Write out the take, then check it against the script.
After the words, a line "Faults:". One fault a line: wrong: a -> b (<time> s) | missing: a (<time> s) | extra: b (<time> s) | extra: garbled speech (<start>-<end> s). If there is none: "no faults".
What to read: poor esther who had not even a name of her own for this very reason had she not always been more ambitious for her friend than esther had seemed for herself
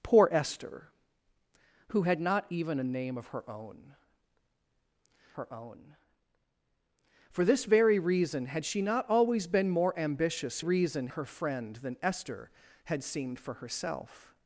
poor esther who had not even a name of her own her own for this very reason had she not always been more ambitious reason her friend than esther had seemed for herself
Faults:
extra: her own (5.3 s)
wrong: for -> reason (10.6 s)